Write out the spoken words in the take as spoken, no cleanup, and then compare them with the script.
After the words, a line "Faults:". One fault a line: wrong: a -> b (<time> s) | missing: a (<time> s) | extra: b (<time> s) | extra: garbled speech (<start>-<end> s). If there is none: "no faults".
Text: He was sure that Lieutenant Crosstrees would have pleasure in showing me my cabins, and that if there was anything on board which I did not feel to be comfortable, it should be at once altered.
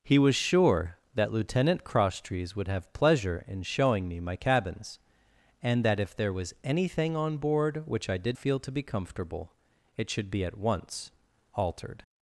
He was sure that Lieutenant Crosstrees would have pleasure in showing me my cabins, and that if there was anything on board which I did feel to be comfortable, it should be at once altered.
Faults:
missing: not (8.4 s)